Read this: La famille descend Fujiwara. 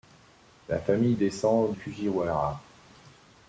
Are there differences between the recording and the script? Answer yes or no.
no